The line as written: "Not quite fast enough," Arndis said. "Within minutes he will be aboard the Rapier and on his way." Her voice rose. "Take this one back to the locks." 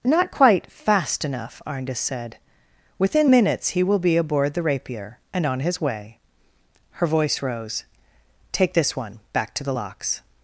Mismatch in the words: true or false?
false